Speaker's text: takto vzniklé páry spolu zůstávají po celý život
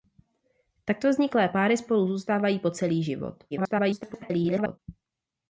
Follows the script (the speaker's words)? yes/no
no